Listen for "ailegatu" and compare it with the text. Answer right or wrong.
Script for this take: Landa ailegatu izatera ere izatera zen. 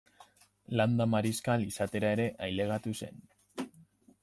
wrong